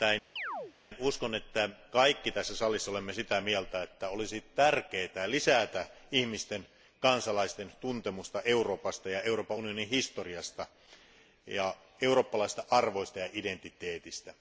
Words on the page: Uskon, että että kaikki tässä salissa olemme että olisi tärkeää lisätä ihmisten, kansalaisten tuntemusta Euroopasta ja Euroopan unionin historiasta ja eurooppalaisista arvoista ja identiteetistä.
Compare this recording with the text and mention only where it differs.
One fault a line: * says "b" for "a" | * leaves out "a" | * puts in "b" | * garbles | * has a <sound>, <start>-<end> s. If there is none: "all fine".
* has a chirp, 0.4-0.7 s
* leaves out "että"
* puts in "sitä mieltä"